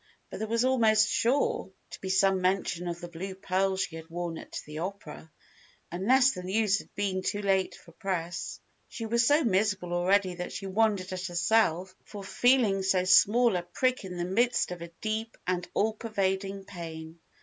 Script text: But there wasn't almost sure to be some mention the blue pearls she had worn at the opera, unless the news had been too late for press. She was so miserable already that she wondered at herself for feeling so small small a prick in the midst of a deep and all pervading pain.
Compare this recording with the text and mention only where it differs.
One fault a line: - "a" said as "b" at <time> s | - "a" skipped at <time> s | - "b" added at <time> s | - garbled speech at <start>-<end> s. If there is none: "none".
- "wasn't" said as "was" at 0.5 s
- "of" added at 2.9 s
- "small" skipped at 13.6 s